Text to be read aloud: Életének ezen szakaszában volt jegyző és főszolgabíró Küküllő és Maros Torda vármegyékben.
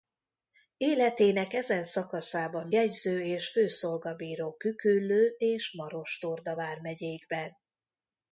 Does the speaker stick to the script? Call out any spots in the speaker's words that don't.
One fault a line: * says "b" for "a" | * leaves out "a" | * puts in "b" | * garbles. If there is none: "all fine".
* leaves out "volt"